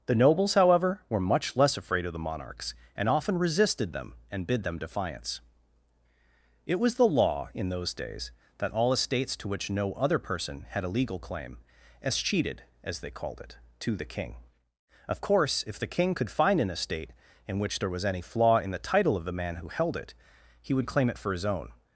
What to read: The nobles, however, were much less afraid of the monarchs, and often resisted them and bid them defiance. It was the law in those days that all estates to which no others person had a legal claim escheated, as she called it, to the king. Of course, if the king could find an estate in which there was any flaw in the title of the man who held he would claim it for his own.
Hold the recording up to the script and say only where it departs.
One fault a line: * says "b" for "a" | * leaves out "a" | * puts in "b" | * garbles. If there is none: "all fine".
* says "other" for "others"
* says "they" for "she"
* puts in "it"